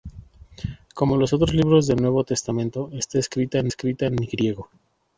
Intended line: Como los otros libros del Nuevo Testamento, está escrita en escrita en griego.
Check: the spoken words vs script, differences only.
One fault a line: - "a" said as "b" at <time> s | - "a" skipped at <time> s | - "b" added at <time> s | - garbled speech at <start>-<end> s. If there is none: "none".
none